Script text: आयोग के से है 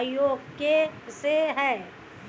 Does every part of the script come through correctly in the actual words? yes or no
yes